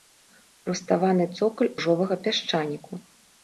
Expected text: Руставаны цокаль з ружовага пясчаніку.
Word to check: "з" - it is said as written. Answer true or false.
false